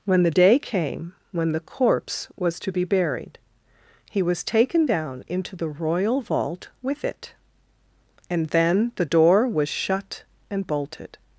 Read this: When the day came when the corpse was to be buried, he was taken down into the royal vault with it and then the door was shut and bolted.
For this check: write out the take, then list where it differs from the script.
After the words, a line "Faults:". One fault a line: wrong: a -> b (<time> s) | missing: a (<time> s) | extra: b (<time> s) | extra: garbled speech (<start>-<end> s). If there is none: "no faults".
When the day came when the corpse was to be buried, he was taken down into the royal vault with it and then the door was shut and bolted.
Faults:
no faults